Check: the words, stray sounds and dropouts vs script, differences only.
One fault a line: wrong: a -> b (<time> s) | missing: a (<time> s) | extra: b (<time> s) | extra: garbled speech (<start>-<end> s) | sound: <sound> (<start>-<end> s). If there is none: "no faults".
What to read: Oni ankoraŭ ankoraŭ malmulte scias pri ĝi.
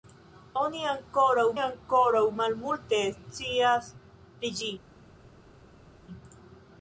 no faults